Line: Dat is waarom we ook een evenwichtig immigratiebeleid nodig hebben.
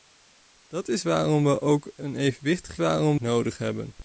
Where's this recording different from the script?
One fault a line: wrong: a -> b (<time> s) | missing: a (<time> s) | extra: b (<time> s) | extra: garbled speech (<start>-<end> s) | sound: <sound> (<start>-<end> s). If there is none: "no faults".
wrong: immigratiebeleid -> waarom (2.8 s)